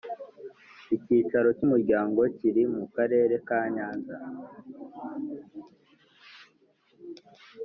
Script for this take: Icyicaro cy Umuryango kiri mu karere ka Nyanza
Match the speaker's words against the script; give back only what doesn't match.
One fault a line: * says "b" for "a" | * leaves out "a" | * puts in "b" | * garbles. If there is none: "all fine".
all fine